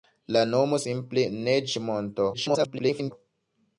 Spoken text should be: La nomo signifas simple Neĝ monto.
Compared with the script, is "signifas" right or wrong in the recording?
wrong